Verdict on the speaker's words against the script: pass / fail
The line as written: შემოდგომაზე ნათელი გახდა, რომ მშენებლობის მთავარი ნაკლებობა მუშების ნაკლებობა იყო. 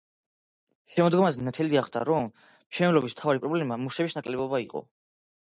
fail